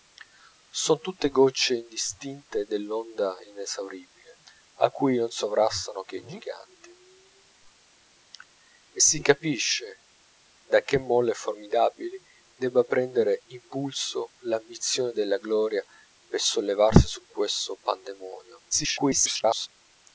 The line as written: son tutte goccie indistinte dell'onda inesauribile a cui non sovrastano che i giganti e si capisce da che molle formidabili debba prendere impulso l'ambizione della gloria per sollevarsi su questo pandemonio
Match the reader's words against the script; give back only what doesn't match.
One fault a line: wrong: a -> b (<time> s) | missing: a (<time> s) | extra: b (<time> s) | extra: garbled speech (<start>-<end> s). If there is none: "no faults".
extra: garbled speech (18.7-19.7 s)